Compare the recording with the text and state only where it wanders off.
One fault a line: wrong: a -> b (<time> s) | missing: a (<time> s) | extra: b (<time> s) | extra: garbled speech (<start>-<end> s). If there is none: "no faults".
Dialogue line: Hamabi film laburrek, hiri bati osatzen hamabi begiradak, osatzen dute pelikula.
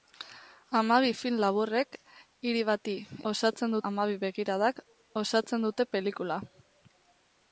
no faults